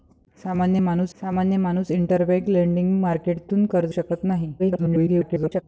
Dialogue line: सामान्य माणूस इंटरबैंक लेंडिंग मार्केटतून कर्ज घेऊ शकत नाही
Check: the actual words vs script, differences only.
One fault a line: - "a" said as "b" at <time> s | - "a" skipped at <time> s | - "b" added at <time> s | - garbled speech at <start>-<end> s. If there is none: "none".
- "सामान्य माणूस" added at 1.2 s
- "घेऊ" skipped at 3.9 s
- garbled speech at 4.6-5.6 s